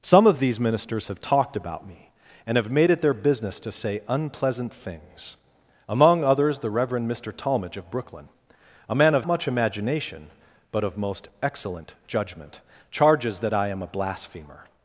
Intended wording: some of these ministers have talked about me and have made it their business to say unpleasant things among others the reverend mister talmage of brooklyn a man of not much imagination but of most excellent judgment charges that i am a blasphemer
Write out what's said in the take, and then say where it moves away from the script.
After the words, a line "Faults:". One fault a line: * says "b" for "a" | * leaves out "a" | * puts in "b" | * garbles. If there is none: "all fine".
some of these ministers have talked about me and have made it their business to say unpleasant things among others the reverend mister talmage of brooklyn a man of much imagination but of most excellent judgment charges that i am a blasphemer
Faults:
* leaves out "not"